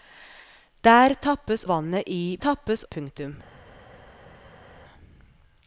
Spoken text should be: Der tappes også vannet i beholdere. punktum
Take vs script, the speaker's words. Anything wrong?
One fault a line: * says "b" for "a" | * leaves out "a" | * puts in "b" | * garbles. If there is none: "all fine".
* leaves out "også"
* says "tappes" for "beholdere"